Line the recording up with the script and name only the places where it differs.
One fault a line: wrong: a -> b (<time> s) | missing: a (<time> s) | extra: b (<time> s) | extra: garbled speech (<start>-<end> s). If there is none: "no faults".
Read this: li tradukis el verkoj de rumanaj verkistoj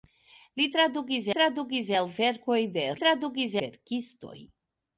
extra: tradukis (1.4 s)
wrong: rumanaj -> tradukis (3.0 s)